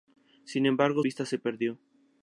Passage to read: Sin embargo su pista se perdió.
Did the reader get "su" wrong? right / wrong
wrong